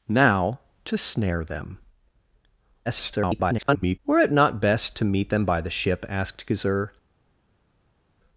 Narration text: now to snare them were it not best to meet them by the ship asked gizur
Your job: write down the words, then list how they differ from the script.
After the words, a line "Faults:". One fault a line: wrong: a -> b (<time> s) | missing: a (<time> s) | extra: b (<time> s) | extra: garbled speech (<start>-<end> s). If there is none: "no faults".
now to snare them [garbled] were it not best to meet them by the ship asked gizur
Faults:
extra: garbled speech (2.9-4.0 s)